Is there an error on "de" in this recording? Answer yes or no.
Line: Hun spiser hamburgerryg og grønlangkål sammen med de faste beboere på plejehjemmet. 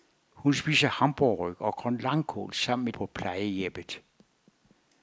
yes